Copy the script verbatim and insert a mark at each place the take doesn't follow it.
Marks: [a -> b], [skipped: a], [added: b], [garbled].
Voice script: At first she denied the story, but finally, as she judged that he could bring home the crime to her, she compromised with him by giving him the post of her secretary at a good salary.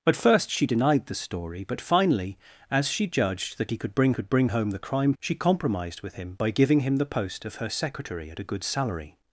At first she denied the story, but finally, as she judged that he could bring [added: could bring] home the crime [skipped: to her,] she compromised with him by giving him the post of her secretary at a good salary.